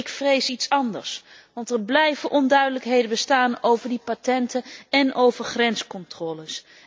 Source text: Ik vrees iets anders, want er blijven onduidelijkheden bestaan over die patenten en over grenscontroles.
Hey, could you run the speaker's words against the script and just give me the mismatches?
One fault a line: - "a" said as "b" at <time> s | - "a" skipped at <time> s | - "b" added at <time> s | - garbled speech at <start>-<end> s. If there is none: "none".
none